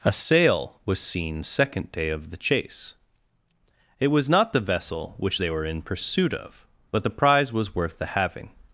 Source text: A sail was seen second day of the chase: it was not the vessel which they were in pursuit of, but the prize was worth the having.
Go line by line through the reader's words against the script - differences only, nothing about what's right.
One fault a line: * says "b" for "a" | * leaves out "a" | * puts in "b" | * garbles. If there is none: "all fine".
all fine